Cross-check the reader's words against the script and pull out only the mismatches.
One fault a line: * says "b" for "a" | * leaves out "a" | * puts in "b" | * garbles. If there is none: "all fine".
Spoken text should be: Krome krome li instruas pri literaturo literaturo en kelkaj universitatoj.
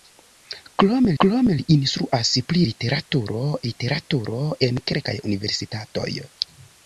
all fine